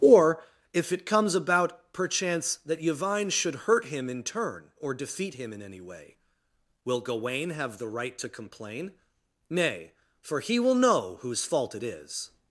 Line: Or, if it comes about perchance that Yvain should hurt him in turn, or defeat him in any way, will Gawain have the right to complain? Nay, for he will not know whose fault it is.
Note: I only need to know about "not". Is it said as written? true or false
false